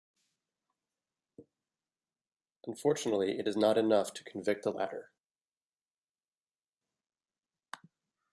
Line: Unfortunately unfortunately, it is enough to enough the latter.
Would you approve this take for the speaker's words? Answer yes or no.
no